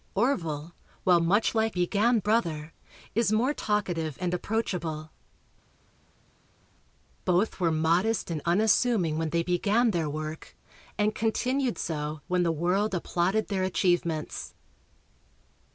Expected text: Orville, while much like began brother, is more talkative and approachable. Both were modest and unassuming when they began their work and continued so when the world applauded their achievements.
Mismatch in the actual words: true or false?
false